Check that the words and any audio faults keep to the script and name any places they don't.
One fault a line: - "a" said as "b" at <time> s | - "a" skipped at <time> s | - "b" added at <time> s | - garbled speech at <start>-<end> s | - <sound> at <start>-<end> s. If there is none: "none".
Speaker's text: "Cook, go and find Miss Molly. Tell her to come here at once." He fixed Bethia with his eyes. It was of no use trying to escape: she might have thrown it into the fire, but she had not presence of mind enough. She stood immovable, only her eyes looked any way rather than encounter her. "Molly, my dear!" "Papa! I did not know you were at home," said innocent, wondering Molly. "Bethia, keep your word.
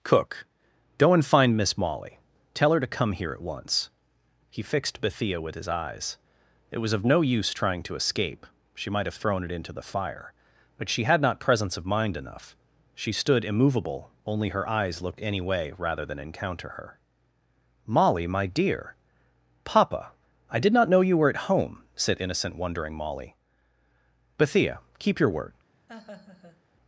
- laugh at 25.9-26.6 s